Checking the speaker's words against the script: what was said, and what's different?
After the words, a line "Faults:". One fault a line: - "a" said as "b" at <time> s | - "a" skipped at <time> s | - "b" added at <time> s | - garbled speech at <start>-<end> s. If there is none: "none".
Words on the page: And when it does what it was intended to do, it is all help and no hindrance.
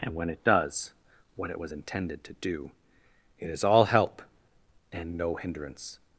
And when it does what it was intended to do, it is all help and no hindrance.
Faults:
none